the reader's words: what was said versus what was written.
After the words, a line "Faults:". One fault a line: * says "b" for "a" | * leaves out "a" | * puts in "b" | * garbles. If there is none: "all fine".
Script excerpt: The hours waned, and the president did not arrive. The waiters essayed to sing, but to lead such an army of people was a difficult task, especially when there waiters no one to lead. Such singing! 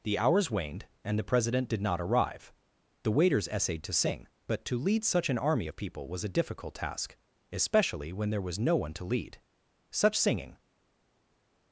The hours waned, and the president did not arrive. The waiters essayed to sing, but to lead such an army of people was a difficult task, especially when there was no one to lead. Such singing!
Faults:
* says "was" for "waiters"